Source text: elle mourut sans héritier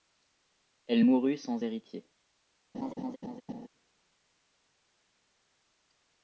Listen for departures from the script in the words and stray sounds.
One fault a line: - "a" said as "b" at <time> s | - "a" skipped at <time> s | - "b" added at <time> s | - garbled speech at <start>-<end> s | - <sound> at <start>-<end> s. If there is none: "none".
- laugh at 2.7-3.7 s